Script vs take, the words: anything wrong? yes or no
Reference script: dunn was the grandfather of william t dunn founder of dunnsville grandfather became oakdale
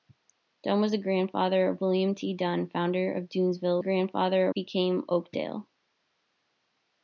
no